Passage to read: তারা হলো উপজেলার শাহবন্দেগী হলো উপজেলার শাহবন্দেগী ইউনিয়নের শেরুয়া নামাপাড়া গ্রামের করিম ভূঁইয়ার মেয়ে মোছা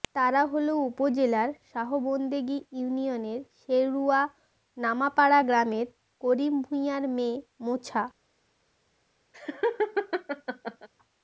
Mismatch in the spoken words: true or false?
true